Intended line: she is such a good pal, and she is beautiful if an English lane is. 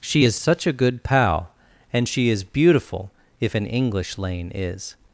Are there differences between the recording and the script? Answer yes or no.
no